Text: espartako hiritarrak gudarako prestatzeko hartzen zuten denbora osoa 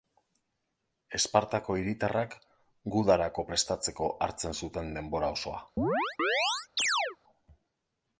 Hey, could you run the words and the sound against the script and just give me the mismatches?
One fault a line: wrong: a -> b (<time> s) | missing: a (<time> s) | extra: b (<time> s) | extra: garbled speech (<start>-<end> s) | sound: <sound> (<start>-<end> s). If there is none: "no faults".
sound: chirp (5.8-7.2 s)